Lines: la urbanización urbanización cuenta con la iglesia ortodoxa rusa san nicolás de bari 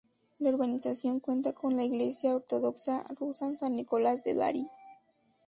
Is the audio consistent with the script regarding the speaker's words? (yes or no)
no